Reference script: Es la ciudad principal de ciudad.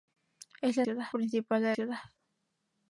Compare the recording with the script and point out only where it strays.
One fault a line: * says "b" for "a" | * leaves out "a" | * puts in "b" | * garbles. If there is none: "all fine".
all fine